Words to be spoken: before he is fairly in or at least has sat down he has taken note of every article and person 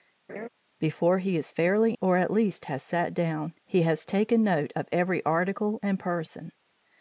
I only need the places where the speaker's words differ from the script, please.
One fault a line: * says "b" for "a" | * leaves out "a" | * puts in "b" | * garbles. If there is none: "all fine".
* leaves out "in"